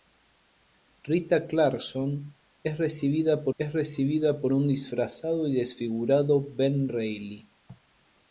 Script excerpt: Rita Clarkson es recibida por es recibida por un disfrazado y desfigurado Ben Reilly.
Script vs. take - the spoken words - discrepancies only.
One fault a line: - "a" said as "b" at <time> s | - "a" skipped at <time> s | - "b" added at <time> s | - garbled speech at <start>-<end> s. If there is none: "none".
none